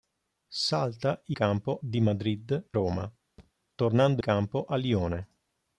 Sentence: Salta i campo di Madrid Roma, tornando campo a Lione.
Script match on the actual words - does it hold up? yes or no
yes